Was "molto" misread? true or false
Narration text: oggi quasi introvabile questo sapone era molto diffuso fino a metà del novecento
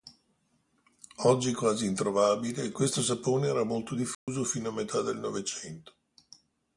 false